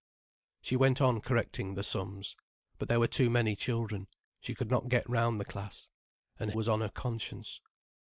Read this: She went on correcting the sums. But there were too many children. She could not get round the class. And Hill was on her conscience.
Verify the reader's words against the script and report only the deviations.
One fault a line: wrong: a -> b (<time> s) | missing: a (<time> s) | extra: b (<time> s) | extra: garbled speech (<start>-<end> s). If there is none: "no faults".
missing: Hill (6.5 s)